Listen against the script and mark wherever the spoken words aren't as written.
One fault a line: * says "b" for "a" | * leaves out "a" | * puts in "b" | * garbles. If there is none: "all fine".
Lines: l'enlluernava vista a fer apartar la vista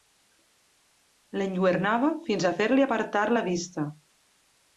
* says "fins" for "vista"
* puts in "li"